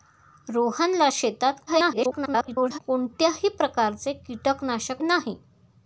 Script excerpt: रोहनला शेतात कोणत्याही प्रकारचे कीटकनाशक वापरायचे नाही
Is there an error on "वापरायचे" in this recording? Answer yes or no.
yes